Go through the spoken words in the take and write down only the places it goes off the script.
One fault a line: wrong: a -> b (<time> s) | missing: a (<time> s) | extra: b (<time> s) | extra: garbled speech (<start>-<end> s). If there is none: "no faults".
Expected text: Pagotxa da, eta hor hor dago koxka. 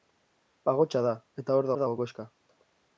no faults